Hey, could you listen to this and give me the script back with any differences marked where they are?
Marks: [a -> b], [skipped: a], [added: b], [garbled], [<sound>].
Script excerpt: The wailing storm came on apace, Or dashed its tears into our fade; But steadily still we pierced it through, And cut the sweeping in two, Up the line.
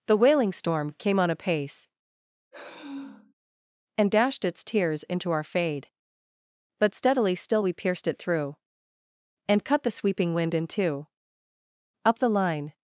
The wailing storm came on apace, [sigh] [Or -> And] dashed its tears into our fade; But steadily still we pierced it through, And cut the sweeping [added: wind] in two, Up the line.